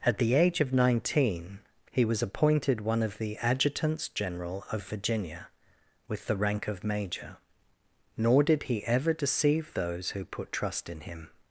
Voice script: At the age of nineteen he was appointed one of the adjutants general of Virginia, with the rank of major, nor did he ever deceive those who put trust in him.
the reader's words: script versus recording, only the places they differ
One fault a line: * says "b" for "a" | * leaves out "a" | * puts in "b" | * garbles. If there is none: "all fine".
all fine